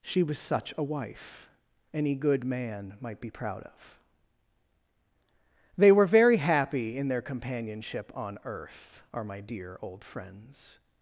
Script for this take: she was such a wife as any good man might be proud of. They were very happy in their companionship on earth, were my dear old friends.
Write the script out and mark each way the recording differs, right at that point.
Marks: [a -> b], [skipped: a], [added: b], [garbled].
she was such a wife [skipped: as] any good man might be proud of. They were very happy in their companionship on earth, [were -> are] my dear old friends.